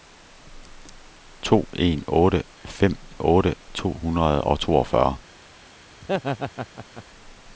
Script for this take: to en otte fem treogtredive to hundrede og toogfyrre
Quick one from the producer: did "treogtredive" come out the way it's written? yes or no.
no